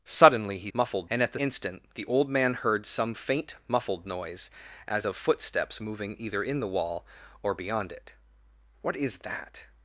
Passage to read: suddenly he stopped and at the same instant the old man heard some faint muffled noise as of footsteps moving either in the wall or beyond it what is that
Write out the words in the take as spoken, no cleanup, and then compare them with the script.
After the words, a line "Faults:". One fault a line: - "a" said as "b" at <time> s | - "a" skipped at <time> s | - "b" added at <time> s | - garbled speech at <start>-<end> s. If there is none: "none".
suddenly he muffled and at the instant the old man heard some faint muffled noise as of footsteps moving either in the wall or beyond it what is that
Faults:
- "stopped" said as "muffled" at 0.7 s
- "same" skipped at 1.4 s